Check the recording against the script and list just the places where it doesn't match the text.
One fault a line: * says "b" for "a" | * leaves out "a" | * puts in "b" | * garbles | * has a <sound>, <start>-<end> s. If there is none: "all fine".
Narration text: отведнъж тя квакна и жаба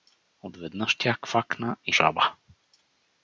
all fine